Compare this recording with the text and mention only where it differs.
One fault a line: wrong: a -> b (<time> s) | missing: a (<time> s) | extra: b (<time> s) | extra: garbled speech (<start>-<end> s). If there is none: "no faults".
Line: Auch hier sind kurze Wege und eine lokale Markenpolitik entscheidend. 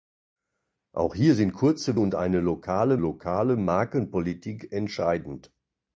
missing: Wege (2.0 s)
extra: lokale (3.0 s)